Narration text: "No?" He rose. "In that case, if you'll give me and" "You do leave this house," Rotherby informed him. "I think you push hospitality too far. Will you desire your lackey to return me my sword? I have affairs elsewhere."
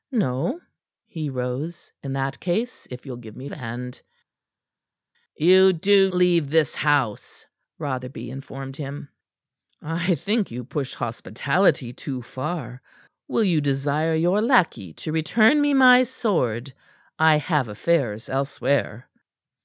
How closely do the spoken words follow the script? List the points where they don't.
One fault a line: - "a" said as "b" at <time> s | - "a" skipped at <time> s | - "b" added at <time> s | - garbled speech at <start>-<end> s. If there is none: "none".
none